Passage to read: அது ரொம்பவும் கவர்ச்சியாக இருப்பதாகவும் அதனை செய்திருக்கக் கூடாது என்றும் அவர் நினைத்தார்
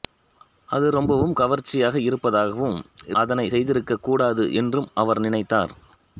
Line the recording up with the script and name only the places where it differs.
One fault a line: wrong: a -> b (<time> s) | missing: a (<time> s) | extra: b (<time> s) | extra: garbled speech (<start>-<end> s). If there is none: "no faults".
no faults